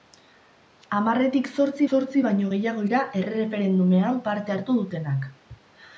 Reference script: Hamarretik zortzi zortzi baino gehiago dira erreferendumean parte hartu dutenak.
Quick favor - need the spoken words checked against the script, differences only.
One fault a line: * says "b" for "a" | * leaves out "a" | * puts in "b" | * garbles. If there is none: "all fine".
all fine